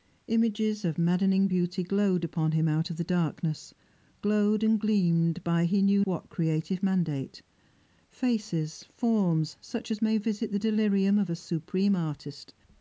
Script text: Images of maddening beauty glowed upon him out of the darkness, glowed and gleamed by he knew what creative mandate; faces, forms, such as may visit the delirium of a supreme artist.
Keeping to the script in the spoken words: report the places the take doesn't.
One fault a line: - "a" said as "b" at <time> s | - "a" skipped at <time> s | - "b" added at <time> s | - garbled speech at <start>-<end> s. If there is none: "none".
none